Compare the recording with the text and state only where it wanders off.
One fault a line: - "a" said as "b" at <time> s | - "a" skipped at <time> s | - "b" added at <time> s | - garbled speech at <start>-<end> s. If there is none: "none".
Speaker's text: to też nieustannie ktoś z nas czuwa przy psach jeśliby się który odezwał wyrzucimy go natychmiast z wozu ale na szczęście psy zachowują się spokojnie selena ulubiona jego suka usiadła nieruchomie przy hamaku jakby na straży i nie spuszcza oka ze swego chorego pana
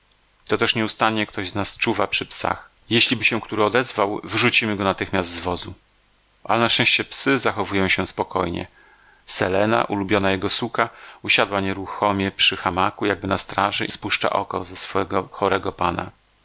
- "nie" skipped at 13.9 s